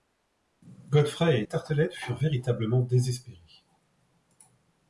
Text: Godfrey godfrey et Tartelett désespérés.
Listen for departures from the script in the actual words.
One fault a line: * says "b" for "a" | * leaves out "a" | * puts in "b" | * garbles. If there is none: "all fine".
* leaves out "godfrey"
* puts in "furent véritablement"